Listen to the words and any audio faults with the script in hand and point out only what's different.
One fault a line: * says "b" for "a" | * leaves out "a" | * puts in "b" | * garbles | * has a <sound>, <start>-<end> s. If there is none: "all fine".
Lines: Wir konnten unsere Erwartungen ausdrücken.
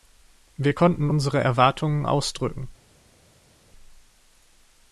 all fine